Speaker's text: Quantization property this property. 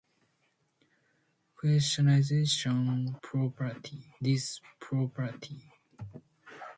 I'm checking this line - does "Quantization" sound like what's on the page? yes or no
yes